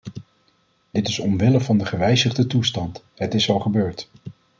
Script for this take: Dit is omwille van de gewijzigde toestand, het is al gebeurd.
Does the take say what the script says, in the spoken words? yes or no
yes